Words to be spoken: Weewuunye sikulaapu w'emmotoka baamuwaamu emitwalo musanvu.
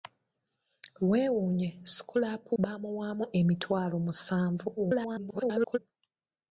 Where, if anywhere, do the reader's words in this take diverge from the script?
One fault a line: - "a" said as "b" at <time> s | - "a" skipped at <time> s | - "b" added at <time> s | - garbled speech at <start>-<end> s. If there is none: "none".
- "w'emmotoka" skipped at 2.5 s
- garbled speech at 4.8-5.8 s